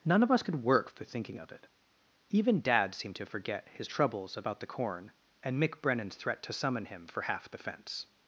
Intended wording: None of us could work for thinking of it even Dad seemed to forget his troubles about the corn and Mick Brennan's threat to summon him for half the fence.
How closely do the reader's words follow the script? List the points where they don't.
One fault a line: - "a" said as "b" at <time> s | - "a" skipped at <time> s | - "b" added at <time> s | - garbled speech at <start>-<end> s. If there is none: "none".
none